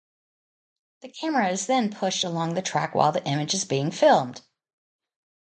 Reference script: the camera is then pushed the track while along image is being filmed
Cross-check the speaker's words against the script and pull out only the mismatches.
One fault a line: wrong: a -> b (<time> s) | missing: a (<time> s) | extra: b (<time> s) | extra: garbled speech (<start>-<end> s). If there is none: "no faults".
extra: along (2.2 s)
wrong: along -> the (3.1 s)